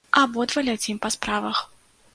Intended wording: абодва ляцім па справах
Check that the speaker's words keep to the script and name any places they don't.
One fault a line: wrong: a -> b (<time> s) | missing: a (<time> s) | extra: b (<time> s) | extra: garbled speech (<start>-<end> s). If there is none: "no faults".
no faults